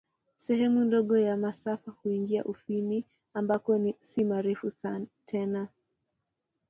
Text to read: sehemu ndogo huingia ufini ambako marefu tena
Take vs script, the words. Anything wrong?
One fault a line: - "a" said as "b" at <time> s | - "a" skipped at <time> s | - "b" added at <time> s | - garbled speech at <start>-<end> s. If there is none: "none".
- "ya masafa" added at 1.2 s
- "si" added at 4.0 s